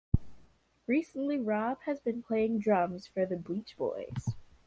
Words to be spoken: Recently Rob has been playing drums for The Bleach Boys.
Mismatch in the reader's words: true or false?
false